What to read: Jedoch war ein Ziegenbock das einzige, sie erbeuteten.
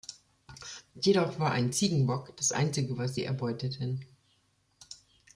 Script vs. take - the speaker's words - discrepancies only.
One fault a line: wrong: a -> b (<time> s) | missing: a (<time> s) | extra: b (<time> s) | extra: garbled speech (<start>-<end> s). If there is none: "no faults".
extra: was (3.0 s)